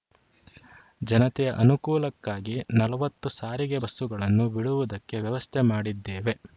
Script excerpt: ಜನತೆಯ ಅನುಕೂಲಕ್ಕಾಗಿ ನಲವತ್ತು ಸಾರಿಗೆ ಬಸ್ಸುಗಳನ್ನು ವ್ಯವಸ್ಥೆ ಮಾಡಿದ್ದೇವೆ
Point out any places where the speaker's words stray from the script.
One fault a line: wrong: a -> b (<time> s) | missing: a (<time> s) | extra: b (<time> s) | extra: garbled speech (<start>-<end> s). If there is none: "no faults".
extra: ಬಿಡುವುದಕ್ಕೆ (4.5 s)